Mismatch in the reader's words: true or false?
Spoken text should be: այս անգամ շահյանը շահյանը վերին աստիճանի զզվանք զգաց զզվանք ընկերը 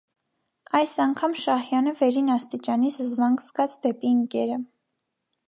true